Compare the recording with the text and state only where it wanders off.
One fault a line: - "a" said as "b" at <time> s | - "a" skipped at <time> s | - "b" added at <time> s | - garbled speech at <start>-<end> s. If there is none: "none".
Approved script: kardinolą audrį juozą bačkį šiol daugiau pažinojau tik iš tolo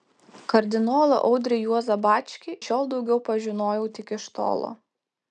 none